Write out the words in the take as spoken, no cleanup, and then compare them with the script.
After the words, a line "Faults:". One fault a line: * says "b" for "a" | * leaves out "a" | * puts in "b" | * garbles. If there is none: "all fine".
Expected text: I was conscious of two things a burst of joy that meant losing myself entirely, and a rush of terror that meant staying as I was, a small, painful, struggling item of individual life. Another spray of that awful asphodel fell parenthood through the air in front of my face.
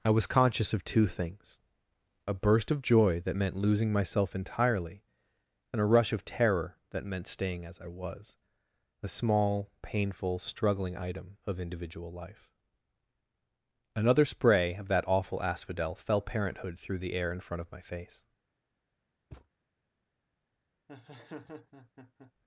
I was conscious of two things a burst of joy that meant losing myself entirely, and a rush of terror that meant staying as I was, a small, painful, struggling item of individual life. Another spray of that awful asphodel fell parenthood through the air in front of my face.
Faults:
all fine